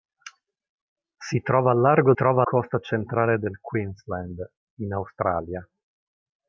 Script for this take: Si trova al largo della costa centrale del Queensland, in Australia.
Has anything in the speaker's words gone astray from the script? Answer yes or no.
yes